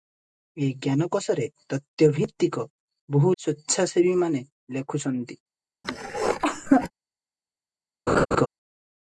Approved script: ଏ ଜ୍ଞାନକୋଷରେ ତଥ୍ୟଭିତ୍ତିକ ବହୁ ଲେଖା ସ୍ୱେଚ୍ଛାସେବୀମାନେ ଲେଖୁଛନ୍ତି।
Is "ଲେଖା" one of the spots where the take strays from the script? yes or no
yes